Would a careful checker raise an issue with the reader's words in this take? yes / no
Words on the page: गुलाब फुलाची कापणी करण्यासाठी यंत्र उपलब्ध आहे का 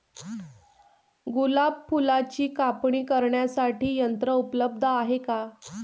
no